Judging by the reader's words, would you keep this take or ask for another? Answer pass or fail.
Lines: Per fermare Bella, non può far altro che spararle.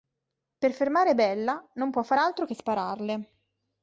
pass